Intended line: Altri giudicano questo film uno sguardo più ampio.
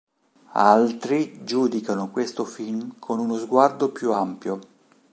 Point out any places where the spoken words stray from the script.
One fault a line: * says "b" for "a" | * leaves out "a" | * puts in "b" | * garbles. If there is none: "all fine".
* puts in "con"